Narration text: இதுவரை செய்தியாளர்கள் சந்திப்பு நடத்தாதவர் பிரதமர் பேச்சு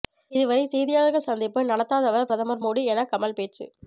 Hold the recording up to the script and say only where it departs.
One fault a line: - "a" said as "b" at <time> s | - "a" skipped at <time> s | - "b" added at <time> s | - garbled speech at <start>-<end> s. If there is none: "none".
- "மோடி என கமல்" added at 2.6 s